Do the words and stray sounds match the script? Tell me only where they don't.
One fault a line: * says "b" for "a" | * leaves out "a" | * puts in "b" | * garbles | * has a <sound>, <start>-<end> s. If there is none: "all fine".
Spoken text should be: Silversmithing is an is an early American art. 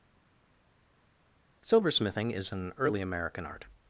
* leaves out "is an"